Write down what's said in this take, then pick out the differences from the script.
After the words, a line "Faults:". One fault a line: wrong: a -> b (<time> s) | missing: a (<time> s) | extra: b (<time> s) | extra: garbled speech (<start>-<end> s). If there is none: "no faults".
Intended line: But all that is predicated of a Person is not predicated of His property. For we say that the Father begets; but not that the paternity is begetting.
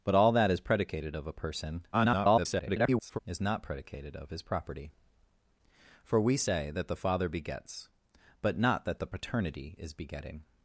But all that is predicated of a Person [garbled] is not predicated of His property. For we say that the Father begets; but not that the paternity is begetting.
Faults:
extra: garbled speech (1.9-3.2 s)